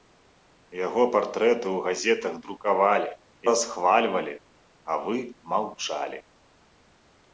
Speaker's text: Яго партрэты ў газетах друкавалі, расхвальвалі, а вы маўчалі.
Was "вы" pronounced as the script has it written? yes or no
yes